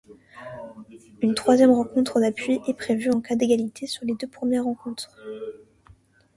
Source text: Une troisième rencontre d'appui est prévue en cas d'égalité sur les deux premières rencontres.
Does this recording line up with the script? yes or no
yes